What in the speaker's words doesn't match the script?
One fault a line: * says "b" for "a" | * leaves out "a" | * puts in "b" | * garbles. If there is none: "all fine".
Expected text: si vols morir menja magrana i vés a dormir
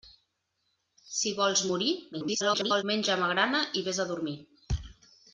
* garbles